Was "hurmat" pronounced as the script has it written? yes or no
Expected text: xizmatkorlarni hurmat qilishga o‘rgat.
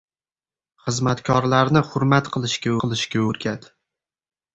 yes